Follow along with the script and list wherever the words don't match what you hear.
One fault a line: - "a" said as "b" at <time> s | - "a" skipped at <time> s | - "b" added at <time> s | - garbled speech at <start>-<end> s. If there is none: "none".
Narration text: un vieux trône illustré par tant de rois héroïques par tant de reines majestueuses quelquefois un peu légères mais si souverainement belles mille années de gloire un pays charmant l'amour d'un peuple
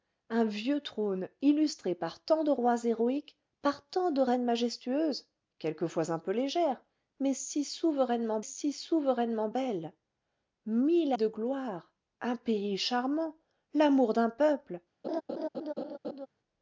- "si souverainement" added at 8.4 s
- "années" skipped at 11.1 s